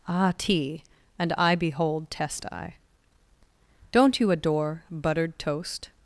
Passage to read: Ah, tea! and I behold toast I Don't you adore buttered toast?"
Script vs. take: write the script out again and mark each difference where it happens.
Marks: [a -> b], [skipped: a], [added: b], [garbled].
Ah, tea! and I behold [toast -> test] I Don't you adore buttered toast?"